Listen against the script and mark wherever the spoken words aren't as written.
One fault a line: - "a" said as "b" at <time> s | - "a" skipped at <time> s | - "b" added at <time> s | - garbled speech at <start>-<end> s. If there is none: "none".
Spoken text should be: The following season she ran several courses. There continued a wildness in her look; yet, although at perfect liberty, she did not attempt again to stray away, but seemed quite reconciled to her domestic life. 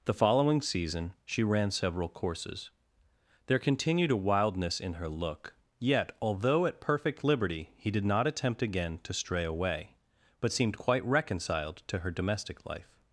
- "she" said as "he" at 7.7 s